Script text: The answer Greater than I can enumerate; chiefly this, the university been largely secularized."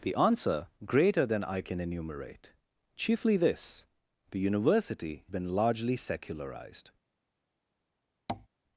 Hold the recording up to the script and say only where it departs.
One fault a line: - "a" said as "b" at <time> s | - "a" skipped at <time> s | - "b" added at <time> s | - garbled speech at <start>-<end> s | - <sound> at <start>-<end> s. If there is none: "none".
- tap at 8.3-8.5 s